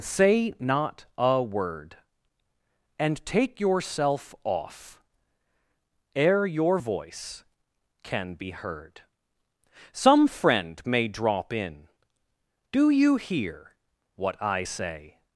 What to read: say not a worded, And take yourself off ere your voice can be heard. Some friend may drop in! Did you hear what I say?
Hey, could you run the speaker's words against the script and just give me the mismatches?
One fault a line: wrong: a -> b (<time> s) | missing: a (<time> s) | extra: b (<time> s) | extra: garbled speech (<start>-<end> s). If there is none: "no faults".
wrong: worded -> word (1.4 s)
wrong: Did -> Do (12.7 s)